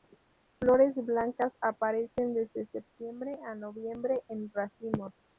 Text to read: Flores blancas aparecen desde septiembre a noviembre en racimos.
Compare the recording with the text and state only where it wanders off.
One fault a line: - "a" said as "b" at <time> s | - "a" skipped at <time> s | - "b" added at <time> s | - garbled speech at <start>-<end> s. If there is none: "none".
none